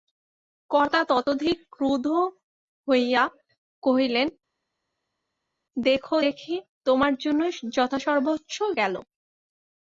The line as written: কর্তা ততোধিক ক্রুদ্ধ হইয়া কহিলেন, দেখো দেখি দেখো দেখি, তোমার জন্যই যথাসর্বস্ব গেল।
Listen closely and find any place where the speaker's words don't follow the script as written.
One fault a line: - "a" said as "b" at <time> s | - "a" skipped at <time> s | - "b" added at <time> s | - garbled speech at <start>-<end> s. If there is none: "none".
- "দেখো দেখি" skipped at 6.5 s